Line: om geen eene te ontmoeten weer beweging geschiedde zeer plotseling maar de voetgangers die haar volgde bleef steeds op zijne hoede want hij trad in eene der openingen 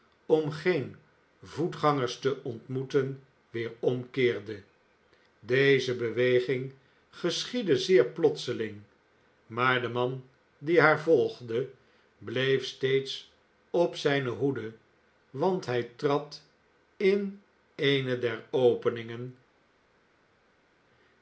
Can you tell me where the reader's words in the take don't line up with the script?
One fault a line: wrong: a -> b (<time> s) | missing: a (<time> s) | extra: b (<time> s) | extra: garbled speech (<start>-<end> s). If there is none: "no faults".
wrong: eene -> voetgangers (1.4 s)
extra: omkeerde deze (3.8 s)
wrong: voetgangers -> man (9.9 s)